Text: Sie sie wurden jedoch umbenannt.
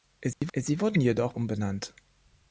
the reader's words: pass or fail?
pass